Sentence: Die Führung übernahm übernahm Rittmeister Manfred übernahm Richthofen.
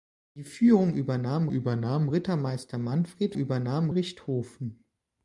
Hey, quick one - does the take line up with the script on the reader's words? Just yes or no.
yes